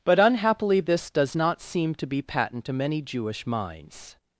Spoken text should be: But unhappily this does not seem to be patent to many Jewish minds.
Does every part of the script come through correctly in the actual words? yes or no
yes